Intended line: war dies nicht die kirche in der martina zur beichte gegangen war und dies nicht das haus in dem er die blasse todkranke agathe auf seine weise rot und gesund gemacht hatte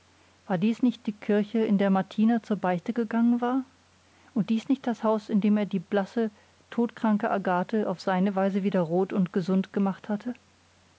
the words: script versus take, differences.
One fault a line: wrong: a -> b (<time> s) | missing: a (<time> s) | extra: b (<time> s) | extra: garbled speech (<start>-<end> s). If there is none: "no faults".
extra: wieder (8.6 s)